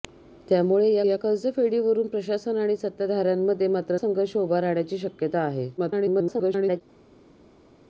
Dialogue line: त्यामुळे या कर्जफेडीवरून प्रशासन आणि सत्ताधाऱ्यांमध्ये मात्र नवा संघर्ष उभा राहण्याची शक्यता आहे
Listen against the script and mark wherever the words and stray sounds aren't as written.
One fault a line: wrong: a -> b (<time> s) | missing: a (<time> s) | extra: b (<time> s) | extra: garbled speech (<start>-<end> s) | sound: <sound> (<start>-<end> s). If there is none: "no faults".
extra: या (1.0 s)
missing: नवा (4.0 s)
extra: garbled speech (5.8-6.8 s)